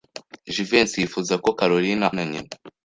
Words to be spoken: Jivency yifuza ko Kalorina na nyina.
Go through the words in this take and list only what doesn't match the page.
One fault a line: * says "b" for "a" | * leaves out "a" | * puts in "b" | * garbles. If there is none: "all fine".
all fine